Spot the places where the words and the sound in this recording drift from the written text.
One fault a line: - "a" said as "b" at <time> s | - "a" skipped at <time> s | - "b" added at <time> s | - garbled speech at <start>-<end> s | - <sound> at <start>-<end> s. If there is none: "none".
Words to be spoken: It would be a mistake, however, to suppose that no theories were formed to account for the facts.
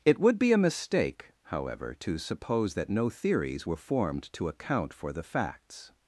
none